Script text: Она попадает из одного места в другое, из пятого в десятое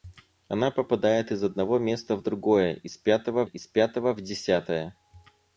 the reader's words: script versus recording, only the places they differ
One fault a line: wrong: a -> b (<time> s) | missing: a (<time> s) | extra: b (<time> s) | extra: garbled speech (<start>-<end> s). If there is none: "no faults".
extra: из пятого (3.4 s)